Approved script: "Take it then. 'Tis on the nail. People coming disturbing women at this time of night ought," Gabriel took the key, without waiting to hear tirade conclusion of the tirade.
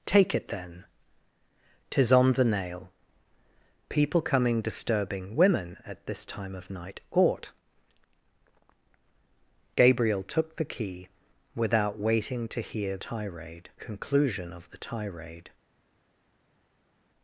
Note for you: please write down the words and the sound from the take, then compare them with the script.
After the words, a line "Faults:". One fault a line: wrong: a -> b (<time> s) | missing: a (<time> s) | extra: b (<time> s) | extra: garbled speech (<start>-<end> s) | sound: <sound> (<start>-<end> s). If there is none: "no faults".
"Take it then. 'Tis on the nail. People coming disturbing women at this time of night ought," Gabriel took the key, without waiting to hear tirade conclusion of the tirade.
Faults:
no faults